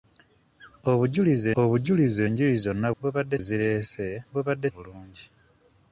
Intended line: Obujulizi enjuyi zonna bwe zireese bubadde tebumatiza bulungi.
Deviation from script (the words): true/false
true